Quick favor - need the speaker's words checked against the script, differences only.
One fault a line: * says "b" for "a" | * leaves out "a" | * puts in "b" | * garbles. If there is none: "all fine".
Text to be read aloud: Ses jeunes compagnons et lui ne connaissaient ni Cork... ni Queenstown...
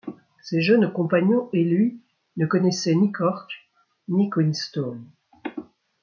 all fine